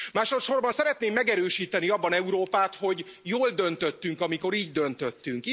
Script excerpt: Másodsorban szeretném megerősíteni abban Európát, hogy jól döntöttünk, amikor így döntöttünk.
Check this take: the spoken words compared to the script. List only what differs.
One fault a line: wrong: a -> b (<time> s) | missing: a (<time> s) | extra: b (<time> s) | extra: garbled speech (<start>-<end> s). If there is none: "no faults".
no faults